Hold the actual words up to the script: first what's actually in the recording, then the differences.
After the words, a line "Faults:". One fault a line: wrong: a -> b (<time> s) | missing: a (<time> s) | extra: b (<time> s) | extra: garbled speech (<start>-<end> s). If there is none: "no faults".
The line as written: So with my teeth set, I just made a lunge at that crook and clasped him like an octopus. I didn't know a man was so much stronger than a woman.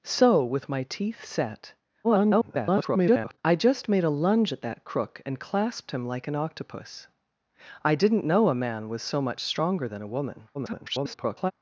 So with my teeth set, [garbled] I just made a lunge at that crook and clasped him like an octopus. I didn't know a man was so much stronger than a woman. [garbled]
Faults:
extra: garbled speech (2.0-3.4 s)
extra: garbled speech (10.5-11.5 s)